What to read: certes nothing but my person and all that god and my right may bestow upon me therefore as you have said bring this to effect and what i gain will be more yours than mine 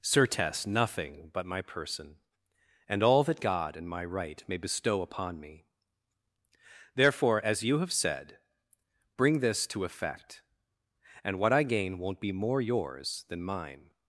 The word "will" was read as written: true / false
false